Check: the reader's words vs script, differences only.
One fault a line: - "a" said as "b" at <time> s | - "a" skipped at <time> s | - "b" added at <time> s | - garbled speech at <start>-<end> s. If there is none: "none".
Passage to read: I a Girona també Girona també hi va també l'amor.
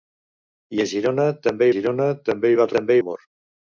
none